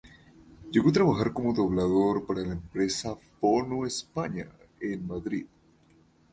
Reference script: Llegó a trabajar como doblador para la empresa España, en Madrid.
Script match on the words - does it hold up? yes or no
no